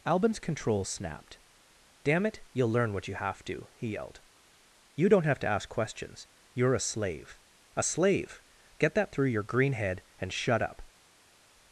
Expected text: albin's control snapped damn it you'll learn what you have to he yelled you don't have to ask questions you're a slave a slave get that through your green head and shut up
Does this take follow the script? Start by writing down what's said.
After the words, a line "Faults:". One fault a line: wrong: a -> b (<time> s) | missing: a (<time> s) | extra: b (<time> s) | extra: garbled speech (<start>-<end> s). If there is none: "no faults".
albin's control snapped damn it you'll learn what you have to he yelled you don't have to ask questions you're a slave a slave get that through your green head and shut up
Faults:
no faults